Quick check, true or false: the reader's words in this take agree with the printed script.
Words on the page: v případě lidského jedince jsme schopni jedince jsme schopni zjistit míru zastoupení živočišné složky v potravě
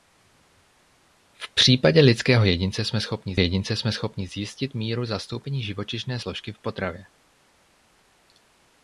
true